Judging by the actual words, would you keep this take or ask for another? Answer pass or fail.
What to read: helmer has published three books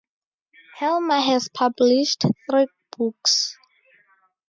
pass